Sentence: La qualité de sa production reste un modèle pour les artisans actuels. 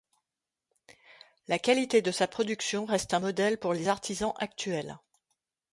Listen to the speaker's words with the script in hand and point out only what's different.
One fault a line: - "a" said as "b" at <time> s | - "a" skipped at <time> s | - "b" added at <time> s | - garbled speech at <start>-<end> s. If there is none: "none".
none